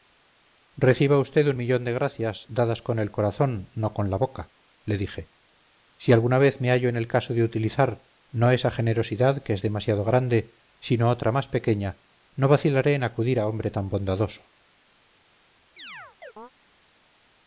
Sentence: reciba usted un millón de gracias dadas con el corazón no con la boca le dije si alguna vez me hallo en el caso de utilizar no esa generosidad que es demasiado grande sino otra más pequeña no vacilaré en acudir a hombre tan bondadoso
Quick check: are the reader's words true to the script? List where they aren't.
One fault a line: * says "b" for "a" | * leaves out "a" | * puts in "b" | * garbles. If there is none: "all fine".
all fine